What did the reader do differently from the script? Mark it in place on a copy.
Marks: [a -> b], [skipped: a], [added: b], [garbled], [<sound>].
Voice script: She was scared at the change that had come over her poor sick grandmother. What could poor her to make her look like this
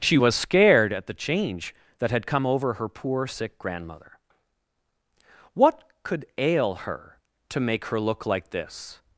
She was scared at the change that had come over her poor sick grandmother. What could [poor -> ail] her to make her look like this